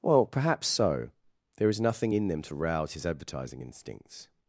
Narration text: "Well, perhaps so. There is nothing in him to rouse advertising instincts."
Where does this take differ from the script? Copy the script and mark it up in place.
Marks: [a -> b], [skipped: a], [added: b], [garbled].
"Well, perhaps so. There is nothing in [him -> them] to rouse [added: his] advertising instincts."